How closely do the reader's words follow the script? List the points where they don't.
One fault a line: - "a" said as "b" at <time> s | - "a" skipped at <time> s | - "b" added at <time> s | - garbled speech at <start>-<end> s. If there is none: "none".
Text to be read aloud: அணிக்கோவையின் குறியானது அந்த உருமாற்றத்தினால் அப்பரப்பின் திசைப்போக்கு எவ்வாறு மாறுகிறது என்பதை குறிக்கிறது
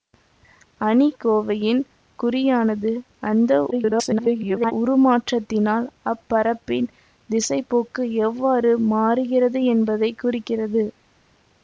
- garbled speech at 3.7-4.7 s